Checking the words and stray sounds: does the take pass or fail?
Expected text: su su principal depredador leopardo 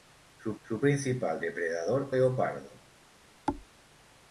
fail